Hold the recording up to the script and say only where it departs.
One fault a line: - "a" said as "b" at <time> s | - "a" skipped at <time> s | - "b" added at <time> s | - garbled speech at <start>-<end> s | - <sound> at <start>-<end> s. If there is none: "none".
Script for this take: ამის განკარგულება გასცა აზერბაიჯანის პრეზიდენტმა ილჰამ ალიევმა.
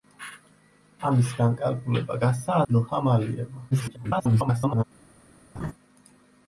- "აზერბაიჯანის პრეზიდენტმა" skipped at 2.6 s
- garbled speech at 3.7-4.8 s
- laugh at 5.5-5.7 s